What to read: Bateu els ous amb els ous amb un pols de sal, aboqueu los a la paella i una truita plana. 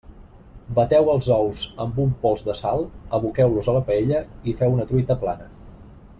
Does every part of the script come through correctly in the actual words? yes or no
no